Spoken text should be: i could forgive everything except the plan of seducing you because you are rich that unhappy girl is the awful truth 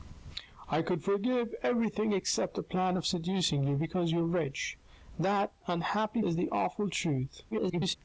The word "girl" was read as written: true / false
false